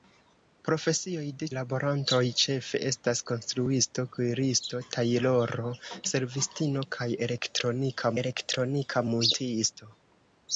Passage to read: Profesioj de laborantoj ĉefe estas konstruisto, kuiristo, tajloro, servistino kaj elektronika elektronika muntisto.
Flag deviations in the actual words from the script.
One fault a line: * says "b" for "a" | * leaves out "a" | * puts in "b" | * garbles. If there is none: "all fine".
all fine